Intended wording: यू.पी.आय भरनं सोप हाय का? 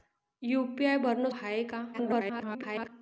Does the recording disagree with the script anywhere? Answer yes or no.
yes